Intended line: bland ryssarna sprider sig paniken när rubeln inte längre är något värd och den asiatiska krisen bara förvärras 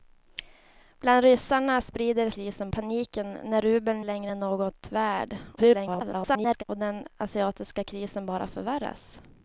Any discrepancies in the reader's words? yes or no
yes